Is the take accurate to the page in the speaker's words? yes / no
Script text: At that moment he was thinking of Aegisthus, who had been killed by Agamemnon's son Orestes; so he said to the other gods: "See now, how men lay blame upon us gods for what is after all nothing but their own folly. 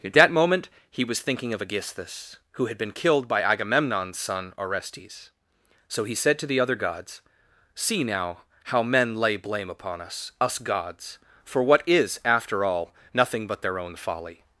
no